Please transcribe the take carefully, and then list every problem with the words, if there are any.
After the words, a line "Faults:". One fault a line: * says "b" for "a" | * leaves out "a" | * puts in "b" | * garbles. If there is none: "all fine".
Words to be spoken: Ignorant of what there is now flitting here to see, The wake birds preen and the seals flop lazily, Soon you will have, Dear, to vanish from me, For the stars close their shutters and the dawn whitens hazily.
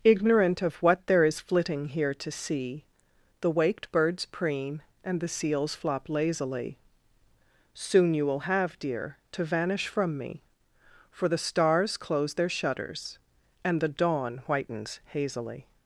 Ignorant of what there is flitting here to see, The waked birds preen and the seals flop lazily, Soon you will have, Dear, to vanish from me, For the stars close their shutters and the dawn whitens hazily.
Faults:
* leaves out "now"
* says "waked" for "wake"